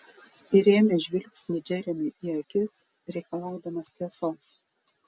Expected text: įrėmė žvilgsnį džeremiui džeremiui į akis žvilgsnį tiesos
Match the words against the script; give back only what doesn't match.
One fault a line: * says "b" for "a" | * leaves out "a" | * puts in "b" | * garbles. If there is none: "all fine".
* leaves out "džeremiui"
* says "reikalaudamas" for "žvilgsnį"